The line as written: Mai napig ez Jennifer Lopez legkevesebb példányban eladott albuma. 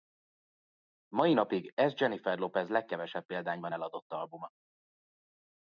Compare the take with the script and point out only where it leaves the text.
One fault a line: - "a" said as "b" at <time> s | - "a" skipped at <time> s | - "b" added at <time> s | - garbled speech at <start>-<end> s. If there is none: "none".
none